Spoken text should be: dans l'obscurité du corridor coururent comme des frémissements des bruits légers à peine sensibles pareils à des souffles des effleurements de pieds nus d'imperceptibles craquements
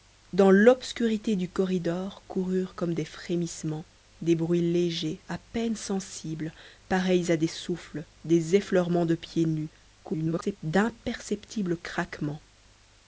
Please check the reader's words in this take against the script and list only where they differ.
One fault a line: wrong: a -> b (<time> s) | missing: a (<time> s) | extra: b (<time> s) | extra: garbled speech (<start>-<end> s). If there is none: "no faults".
extra: garbled speech (10.0-10.6 s)